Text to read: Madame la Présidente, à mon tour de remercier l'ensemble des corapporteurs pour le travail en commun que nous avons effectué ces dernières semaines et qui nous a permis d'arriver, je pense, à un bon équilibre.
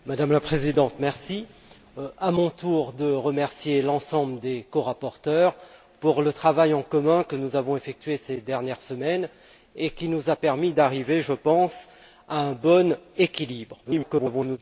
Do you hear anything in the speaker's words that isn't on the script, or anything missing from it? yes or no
yes